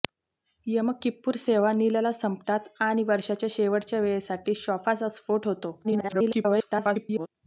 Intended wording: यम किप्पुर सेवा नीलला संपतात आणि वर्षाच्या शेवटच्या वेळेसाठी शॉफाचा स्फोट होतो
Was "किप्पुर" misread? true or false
false